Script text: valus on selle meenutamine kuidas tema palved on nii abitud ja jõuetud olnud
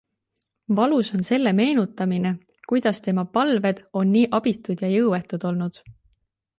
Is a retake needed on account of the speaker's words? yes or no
no